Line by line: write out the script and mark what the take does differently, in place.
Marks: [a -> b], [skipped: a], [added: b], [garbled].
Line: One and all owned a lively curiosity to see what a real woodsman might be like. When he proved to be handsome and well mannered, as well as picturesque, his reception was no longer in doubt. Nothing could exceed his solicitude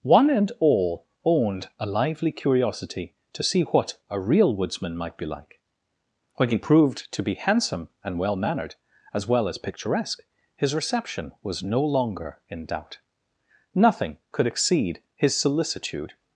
One and all owned a lively curiosity to see what a real woodsman might be like. When he proved to be handsome and well mannered, as well as picturesque, his reception was no longer in doubt. Nothing could exceed his solicitude